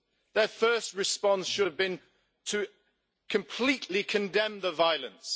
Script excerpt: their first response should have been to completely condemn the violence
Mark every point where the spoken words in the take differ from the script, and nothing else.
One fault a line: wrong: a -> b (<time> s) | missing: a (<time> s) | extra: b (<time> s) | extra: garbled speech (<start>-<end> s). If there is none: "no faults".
no faults